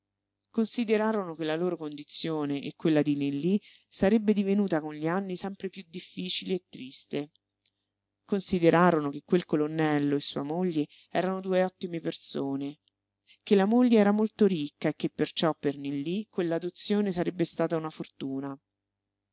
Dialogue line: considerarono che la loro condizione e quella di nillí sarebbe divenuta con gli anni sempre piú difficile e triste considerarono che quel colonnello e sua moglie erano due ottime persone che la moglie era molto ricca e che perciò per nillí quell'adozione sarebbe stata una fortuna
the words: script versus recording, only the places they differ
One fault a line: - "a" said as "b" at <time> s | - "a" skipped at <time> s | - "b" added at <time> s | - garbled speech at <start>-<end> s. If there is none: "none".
none